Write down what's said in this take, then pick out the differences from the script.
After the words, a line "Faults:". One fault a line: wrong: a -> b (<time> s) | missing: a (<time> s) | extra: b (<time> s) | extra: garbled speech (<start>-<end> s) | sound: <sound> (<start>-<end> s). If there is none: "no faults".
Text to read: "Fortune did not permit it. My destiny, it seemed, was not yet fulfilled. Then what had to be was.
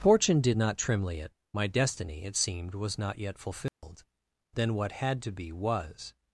"Fortune did not trimly it. My destiny, it seemed, was not yet fulfilled. Then what had to be was.
Faults:
wrong: permit -> trimly (0.8 s)
sound: dropout (3.7-3.8 s)